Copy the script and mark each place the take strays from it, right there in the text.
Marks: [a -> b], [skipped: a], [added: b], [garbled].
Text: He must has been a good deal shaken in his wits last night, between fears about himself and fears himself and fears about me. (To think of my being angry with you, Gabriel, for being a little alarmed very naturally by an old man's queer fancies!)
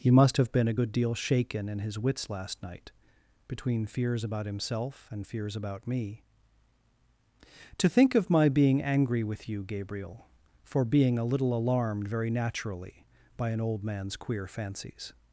He must [has -> have] been a good deal shaken in his wits last night, between fears about himself and fears [skipped: himself and fears] about me. (To think of my being angry with you, Gabriel, for being a little alarmed very naturally by an old man's queer fancies!)